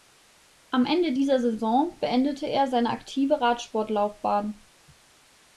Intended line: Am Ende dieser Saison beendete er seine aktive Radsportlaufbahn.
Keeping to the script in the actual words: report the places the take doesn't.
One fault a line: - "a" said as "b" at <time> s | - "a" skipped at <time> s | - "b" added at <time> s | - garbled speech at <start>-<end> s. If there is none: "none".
none